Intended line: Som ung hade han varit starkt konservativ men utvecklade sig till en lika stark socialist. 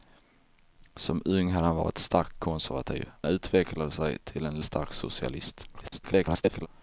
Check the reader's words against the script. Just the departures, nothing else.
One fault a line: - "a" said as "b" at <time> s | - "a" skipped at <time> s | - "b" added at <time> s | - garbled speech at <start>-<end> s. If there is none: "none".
- "men" skipped at 3.1 s
- "lika" skipped at 4.6 s
- garbled speech at 5.7-6.7 s